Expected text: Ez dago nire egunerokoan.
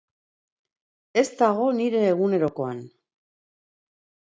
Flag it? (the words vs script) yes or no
no